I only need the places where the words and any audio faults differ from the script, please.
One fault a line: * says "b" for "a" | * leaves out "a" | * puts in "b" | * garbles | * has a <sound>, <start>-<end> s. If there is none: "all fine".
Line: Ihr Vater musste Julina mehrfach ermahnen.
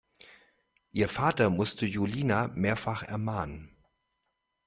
all fine